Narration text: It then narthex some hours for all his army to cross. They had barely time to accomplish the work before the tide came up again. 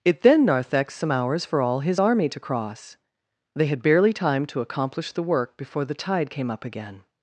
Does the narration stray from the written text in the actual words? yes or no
no